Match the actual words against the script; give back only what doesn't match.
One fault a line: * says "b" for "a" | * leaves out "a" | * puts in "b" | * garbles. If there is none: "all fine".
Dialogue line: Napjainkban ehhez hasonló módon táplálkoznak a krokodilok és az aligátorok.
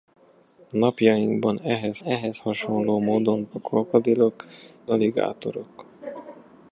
* puts in "ehhez"
* leaves out "táplálkoznak"
* leaves out "és az"